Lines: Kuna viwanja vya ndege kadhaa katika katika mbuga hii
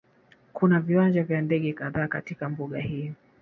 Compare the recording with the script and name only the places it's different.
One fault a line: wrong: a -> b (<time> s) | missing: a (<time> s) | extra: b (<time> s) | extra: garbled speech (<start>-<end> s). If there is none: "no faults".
missing: katika (2.5 s)